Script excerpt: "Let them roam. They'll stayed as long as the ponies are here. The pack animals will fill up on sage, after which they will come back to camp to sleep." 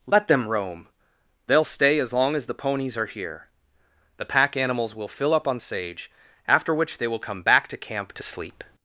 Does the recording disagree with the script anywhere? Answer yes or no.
yes